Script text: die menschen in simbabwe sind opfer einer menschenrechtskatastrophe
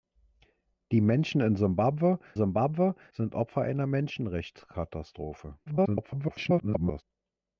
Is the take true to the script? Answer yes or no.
no